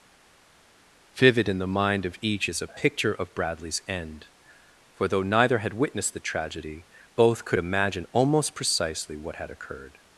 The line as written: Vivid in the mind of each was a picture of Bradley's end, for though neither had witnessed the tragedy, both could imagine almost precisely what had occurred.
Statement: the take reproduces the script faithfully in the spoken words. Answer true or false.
false